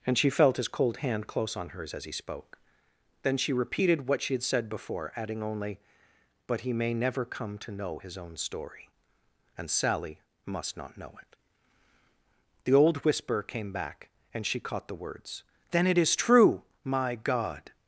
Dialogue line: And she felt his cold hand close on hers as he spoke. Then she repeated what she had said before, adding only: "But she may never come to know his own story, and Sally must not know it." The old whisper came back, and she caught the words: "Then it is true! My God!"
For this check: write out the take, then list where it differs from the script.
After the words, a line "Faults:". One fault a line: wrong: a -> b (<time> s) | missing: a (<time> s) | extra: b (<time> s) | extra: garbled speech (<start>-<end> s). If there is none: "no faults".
And she felt his cold hand close on hers as he spoke. Then she repeated what she had said before, adding only: "But he may never come to know his own story, and Sally must not know it." The old whisper came back, and she caught the words: "Then it is true! My God!"
Faults:
wrong: she -> he (6.6 s)